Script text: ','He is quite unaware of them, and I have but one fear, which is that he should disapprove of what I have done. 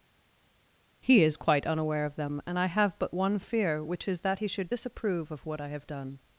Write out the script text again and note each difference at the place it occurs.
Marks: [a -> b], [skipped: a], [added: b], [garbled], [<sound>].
','He is quite unaware of them, and I have but one fear, which is that he should disapprove of what I have done.